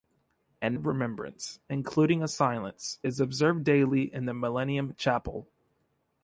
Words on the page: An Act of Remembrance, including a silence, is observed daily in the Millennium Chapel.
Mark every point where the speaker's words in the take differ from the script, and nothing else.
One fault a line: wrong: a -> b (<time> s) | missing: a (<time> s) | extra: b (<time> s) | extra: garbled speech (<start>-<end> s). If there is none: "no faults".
missing: Act (0.8 s)